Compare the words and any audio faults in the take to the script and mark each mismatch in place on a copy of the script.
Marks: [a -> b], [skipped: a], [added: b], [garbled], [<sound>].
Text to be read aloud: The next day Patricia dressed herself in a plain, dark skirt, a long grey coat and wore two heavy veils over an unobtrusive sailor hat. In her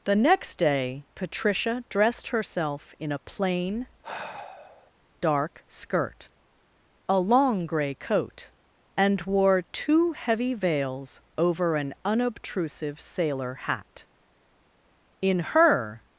The next day Patricia dressed herself in a plain, [sigh] dark skirt, a long grey coat and wore two heavy veils over an unobtrusive sailor hat. In her